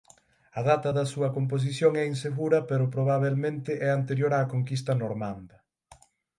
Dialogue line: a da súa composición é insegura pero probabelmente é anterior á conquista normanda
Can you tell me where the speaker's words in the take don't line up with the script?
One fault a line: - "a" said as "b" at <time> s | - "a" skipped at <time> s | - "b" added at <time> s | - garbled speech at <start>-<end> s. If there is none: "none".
- "data" added at 0.7 s